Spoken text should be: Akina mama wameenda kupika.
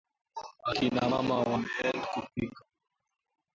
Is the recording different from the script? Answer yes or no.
no